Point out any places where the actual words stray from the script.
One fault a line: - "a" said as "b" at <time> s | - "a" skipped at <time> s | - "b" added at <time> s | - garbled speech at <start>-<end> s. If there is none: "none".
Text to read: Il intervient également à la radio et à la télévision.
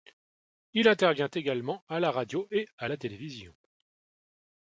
none